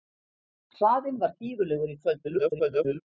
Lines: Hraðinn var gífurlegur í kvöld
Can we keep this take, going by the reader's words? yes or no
no